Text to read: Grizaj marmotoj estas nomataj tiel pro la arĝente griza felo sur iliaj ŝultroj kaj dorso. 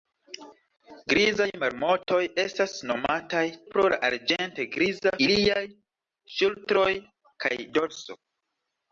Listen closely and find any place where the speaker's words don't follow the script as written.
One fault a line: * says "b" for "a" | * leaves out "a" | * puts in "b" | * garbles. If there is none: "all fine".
* leaves out "tiel"
* leaves out "felo sur"